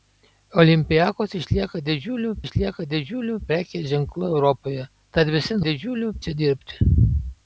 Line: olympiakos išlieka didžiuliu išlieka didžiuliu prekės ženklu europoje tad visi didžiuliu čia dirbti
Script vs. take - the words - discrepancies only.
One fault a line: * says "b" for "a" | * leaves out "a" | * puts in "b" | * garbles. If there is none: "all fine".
all fine